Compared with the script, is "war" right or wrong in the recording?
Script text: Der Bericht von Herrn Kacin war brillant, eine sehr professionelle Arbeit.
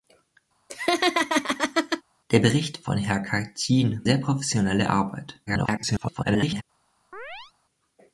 wrong